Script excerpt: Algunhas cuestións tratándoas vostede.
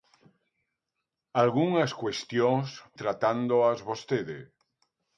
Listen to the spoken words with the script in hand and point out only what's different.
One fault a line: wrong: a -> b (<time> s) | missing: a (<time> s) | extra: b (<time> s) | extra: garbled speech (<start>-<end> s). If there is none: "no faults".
no faults